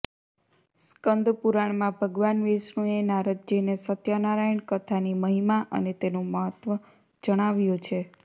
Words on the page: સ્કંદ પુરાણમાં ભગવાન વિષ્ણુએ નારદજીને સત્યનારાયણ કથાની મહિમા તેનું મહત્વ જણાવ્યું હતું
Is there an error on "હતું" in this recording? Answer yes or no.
yes